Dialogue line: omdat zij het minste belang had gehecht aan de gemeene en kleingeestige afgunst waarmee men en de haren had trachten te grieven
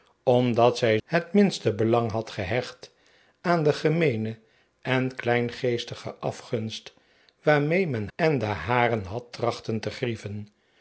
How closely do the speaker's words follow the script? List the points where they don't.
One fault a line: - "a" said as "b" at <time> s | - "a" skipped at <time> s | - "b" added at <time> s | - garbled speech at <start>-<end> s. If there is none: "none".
none